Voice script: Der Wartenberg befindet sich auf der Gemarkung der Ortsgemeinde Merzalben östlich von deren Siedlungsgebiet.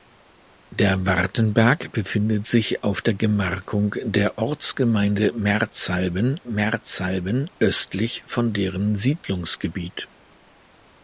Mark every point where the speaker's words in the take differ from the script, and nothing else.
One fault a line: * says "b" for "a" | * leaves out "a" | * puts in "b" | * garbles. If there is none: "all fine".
* puts in "Merzalben"